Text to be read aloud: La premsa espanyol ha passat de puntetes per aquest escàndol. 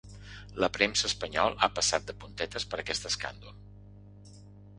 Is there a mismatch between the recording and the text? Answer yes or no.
no